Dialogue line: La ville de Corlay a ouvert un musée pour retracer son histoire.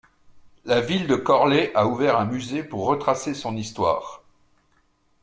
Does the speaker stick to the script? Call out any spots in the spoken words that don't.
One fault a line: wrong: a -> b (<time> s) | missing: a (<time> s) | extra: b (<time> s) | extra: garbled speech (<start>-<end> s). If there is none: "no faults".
no faults